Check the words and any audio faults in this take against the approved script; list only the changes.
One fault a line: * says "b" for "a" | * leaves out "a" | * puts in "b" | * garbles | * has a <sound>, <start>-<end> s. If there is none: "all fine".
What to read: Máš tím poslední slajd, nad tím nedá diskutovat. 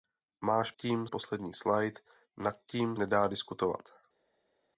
all fine